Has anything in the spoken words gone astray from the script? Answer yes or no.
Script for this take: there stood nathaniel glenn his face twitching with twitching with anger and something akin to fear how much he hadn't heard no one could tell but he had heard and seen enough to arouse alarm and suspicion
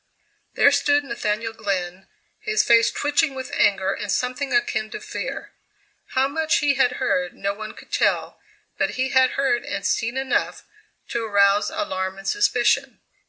yes